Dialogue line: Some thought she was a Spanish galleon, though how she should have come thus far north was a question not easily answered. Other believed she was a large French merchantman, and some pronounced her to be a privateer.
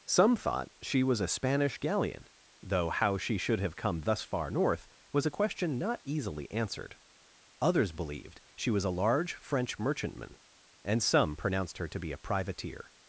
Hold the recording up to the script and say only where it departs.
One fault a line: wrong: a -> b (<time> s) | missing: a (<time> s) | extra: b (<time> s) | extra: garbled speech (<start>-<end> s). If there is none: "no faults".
wrong: Other -> Others (7.6 s)